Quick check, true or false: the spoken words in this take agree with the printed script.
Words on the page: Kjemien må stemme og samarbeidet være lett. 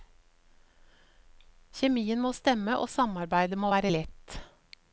false